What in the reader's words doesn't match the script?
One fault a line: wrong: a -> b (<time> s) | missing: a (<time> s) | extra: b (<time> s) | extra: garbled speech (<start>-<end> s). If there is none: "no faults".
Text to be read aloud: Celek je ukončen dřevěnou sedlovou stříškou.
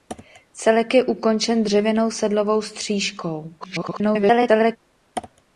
extra: garbled speech (3.6-4.8 s)